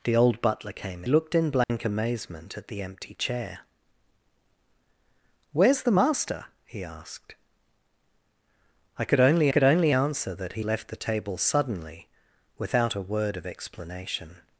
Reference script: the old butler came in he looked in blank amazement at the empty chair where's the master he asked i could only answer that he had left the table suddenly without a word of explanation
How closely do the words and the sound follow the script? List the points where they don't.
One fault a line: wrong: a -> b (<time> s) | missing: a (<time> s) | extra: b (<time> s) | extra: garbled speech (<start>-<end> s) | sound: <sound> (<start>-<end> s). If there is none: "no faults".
missing: in he (1.1 s)
sound: dropout (1.6-1.7 s)
extra: could only (9.5 s)
missing: had (10.6 s)